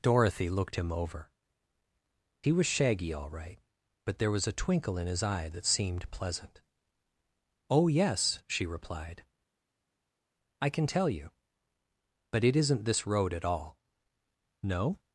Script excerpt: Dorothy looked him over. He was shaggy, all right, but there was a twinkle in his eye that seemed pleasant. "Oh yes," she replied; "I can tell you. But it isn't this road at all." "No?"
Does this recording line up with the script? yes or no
yes